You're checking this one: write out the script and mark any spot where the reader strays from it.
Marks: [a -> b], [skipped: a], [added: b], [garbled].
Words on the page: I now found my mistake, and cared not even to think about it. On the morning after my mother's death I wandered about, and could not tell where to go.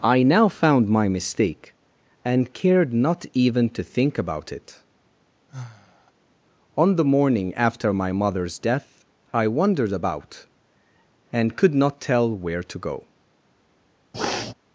I now found my mistake, and cared not even to think about it. On the morning after my mother's death I wandered about, and could not tell where to go.